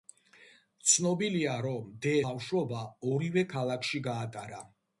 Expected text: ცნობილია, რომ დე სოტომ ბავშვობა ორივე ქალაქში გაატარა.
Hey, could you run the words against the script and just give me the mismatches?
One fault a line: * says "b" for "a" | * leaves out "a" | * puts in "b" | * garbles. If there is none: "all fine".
* leaves out "სოტომ"